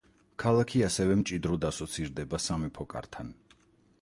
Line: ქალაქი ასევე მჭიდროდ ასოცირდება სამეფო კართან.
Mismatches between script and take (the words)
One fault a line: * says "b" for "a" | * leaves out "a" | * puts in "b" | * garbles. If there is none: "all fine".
all fine